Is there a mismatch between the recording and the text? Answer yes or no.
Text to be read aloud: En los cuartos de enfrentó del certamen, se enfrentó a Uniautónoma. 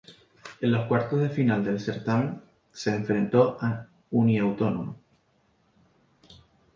yes